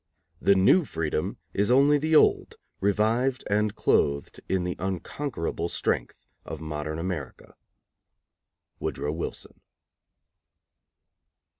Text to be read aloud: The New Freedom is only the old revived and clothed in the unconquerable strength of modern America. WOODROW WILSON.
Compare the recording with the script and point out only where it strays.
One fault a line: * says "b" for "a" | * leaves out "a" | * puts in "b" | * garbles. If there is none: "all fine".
all fine